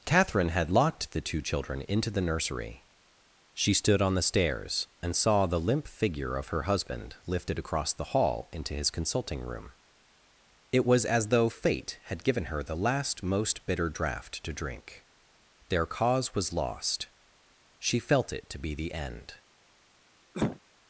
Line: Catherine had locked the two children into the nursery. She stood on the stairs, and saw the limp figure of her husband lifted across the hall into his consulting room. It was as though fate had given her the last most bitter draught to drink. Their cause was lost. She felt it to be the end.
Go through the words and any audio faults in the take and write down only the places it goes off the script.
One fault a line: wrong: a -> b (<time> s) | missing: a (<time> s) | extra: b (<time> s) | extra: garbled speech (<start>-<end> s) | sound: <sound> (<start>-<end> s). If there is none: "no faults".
sound: cough (20.3-20.6 s)